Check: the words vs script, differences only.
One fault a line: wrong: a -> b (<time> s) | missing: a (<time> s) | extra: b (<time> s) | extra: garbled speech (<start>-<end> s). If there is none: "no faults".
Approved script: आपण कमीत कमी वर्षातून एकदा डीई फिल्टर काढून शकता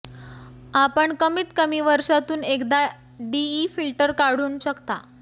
no faults